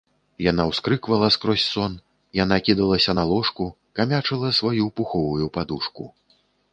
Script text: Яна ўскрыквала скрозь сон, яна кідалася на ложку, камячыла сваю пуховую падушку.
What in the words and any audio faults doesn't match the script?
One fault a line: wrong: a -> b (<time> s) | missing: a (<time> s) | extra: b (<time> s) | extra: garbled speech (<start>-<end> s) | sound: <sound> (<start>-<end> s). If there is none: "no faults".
no faults